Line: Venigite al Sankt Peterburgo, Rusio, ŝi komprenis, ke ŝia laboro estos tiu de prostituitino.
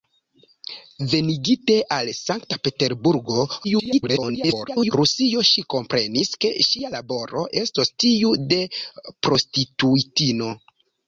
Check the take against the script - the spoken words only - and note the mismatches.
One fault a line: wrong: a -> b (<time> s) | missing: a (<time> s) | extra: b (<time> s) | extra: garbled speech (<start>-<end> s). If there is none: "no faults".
extra: garbled speech (3.6-4.9 s)